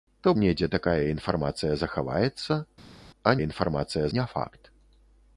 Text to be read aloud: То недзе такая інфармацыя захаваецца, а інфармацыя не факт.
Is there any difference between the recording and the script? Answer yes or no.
no